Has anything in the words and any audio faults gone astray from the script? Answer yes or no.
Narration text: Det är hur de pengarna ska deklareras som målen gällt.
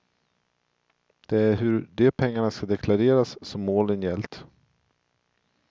no